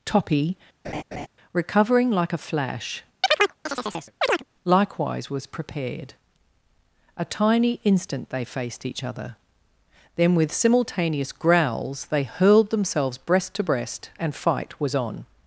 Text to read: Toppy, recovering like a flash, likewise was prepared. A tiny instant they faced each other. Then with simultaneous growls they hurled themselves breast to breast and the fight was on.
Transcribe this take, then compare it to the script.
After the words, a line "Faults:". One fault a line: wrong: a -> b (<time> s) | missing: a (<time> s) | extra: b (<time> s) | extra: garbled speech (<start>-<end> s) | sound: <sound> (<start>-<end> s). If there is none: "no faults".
Toppy, recovering like a flash, likewise was prepared. A tiny instant they faced each other. Then with simultaneous growls they hurled themselves breast to breast and fight was on.
Faults:
sound: laugh (0.8-1.3 s)
sound: chirp (3.2-4.4 s)
missing: the (14.3 s)